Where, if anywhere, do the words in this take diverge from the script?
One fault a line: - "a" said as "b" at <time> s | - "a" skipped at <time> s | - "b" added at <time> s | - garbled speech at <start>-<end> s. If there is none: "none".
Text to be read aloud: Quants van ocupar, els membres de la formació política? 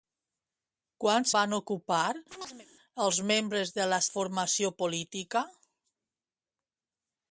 none